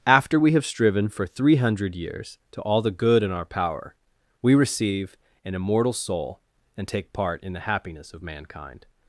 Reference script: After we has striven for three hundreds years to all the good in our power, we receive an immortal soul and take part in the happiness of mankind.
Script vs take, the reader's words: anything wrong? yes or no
yes